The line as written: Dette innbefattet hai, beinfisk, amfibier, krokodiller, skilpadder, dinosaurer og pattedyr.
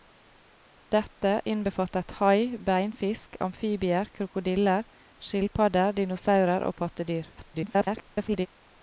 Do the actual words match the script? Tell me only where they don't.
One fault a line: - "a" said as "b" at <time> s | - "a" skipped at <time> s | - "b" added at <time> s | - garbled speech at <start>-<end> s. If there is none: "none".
- garbled speech at 7.4-8.5 s